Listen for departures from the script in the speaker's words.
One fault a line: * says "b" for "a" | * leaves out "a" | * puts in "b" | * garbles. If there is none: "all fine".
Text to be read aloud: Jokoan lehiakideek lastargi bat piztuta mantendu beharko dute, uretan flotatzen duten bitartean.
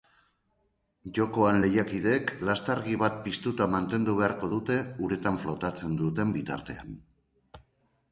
all fine